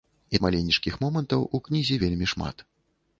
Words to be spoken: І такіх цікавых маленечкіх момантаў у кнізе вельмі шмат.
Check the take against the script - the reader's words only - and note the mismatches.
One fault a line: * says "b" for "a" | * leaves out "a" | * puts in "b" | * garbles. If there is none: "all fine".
* leaves out "такіх цікавых"